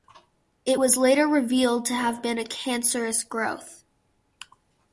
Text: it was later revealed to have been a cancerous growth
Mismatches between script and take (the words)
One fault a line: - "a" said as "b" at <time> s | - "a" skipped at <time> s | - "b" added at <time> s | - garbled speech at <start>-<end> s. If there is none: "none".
none